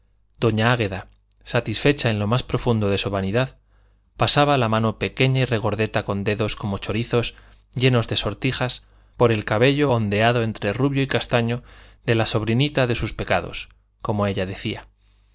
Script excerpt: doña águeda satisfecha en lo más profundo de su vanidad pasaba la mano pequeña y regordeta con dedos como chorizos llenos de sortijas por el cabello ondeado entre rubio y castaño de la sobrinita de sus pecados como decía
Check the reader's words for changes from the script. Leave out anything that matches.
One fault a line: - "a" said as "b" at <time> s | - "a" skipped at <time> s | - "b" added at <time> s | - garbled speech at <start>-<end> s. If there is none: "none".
- "ella" added at 14.3 s